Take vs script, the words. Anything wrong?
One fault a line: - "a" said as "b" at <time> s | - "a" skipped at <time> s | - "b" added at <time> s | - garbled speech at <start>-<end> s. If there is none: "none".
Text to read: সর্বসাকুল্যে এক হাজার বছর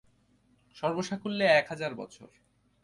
none